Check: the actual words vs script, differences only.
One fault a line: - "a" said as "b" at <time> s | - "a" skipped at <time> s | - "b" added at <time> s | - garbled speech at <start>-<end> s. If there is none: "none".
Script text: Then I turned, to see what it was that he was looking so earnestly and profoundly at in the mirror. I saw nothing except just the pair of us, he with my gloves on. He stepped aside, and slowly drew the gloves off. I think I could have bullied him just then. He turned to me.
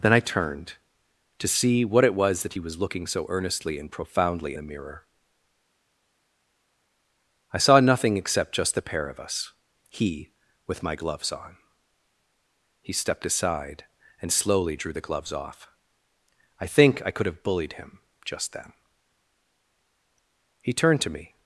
- "at in" skipped at 4.6 s